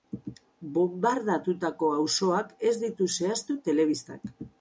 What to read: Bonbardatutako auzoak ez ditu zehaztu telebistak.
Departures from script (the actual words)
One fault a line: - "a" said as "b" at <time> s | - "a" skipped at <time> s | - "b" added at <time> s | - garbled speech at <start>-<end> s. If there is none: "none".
none